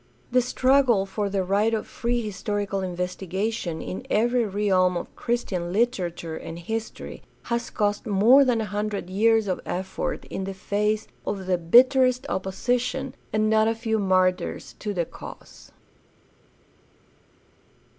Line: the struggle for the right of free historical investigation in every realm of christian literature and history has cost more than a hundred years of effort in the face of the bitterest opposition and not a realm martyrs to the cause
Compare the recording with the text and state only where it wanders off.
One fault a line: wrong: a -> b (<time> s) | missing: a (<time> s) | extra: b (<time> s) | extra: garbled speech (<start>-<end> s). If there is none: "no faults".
wrong: realm -> few (13.7 s)